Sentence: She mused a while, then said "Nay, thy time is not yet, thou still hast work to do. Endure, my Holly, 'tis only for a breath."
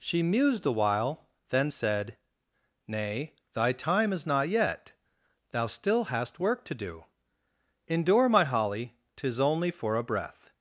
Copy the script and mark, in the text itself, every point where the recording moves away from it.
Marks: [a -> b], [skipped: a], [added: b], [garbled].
She mused a while, then said "Nay, thy time is not yet, thou still hast work to do. Endure, my Holly, 'tis only for a breath."